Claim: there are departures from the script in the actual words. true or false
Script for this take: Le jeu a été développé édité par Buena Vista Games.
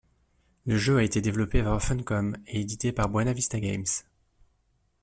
true